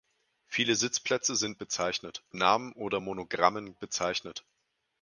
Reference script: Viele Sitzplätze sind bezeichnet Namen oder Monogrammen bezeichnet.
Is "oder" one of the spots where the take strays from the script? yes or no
no